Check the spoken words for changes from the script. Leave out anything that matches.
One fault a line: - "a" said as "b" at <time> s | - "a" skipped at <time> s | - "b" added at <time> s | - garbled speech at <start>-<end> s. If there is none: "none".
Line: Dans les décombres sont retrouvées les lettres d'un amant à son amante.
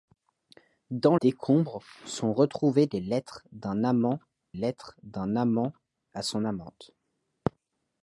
- "les" skipped at 1.1 s
- "lettres d'un amant" added at 4.5 s